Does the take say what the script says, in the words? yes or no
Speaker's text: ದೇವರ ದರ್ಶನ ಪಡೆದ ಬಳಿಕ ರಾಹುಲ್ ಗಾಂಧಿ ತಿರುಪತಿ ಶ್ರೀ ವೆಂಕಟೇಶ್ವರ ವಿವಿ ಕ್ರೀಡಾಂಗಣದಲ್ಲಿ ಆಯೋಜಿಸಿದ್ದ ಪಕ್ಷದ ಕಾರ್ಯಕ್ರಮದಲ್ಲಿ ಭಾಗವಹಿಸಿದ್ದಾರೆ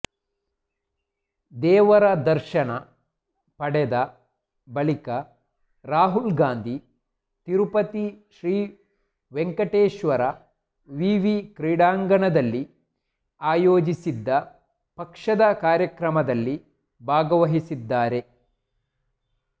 yes